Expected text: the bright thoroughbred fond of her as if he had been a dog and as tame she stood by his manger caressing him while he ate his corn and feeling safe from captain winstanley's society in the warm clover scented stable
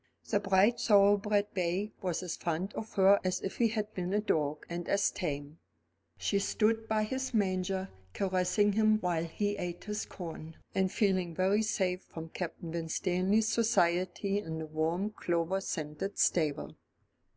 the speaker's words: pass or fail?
fail